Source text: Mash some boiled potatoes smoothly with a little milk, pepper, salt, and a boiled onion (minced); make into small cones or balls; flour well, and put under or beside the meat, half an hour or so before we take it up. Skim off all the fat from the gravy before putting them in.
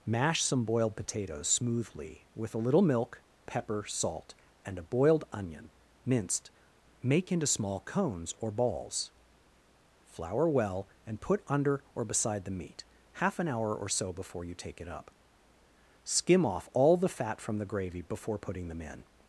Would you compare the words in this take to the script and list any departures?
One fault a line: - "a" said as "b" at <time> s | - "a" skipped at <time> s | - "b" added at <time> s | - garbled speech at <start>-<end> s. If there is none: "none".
- "we" said as "you" at 14.4 s